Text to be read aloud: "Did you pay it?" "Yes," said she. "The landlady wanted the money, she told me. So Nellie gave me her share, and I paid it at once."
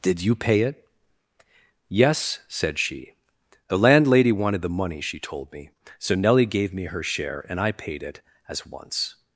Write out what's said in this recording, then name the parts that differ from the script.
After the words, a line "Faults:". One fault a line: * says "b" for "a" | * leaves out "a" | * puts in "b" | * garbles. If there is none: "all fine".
"Did you pay it?" "Yes," said she. "The landlady wanted the money, she told me. So Nellie gave me her share, and I paid it as once."
Faults:
* says "as" for "at"